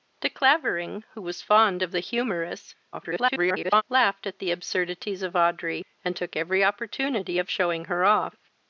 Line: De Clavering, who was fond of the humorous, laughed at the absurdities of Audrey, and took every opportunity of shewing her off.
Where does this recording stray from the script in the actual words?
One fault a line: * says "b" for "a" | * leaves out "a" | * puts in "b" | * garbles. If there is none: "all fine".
* garbles